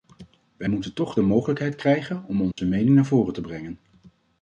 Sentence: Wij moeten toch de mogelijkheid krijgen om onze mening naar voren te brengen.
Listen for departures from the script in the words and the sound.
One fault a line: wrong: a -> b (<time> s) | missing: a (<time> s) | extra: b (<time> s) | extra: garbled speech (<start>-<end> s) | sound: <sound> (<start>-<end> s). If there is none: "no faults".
sound: dropout (2.5-2.6 s)